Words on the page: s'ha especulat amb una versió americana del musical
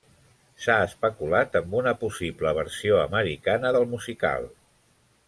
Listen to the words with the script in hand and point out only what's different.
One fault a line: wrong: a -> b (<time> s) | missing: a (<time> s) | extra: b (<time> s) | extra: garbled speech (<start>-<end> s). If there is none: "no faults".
extra: possible (2.0 s)